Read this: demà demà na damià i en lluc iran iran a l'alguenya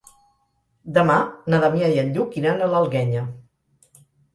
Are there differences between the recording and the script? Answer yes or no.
yes